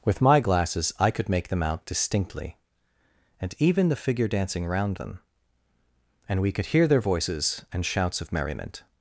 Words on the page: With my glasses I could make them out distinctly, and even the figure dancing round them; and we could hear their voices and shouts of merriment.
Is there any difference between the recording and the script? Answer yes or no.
no